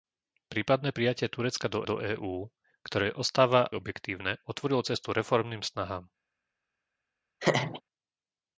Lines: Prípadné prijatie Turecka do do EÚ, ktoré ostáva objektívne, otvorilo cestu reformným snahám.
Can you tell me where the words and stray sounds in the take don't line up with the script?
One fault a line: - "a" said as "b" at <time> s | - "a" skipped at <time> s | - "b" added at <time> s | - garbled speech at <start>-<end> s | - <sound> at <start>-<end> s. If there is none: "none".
- laugh at 7.4-7.8 s